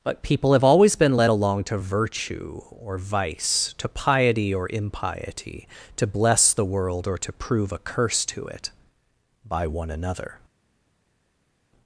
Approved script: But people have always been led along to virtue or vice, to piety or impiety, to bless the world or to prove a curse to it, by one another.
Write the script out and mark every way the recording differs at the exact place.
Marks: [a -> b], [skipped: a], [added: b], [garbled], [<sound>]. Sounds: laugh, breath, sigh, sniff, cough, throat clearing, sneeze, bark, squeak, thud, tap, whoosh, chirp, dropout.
But people have always been led along to virtue or vice, to piety or impiety, to bless the world or to prove a curse to it, by one another.